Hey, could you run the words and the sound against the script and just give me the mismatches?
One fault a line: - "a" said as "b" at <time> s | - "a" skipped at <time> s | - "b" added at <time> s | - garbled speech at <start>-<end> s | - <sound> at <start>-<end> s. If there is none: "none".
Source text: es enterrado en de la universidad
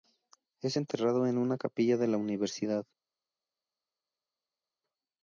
- "una capilla" added at 1.4 s